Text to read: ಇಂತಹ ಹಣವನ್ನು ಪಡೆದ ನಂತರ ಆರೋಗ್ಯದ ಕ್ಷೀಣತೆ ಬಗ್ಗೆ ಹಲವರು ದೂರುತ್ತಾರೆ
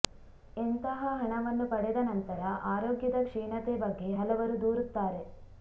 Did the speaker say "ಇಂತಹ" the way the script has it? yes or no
yes